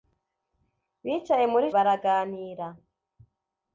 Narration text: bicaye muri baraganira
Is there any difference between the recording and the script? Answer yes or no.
no